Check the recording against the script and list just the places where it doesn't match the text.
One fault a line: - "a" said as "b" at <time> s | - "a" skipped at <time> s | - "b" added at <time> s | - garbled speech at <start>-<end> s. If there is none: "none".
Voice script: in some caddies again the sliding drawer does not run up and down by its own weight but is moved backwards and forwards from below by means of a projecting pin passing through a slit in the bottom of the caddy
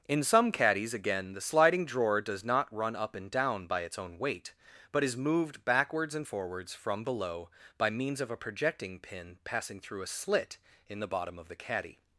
none